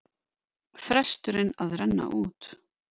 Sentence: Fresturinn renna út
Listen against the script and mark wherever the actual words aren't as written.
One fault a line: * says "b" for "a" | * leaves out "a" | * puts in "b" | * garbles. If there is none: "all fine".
* puts in "að"